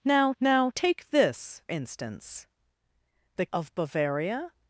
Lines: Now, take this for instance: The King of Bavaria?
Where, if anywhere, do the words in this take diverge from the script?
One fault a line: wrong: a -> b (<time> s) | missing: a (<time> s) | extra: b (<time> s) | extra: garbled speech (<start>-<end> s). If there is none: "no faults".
extra: now (0.4 s)
missing: for (1.6 s)
missing: King (3.5 s)